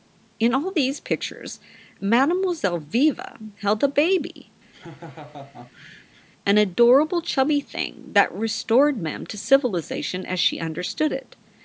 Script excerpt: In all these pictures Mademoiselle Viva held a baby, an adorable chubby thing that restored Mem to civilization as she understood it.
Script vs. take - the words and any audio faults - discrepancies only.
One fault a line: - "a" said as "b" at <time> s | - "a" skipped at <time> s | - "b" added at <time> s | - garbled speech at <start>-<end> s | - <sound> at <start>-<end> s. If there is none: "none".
- laugh at 4.7-6.3 s